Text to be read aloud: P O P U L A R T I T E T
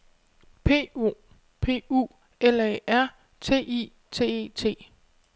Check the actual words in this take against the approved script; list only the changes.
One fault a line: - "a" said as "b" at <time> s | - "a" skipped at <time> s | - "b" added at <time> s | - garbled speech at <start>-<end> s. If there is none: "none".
none